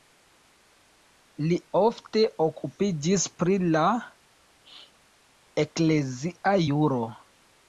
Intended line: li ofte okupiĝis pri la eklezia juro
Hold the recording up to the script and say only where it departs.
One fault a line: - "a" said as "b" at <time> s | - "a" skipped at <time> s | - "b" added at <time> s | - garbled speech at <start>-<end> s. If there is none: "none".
none